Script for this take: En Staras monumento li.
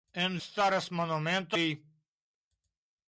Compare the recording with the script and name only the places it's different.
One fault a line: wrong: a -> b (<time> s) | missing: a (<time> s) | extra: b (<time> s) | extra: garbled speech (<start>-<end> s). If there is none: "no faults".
no faults